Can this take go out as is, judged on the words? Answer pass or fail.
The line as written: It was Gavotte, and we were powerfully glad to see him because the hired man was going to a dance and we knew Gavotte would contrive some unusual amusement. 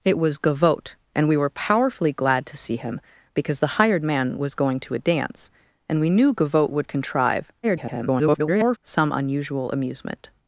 fail